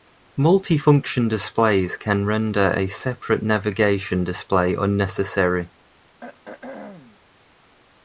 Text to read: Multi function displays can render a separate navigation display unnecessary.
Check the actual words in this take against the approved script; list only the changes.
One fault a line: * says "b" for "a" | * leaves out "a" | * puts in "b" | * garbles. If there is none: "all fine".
all fine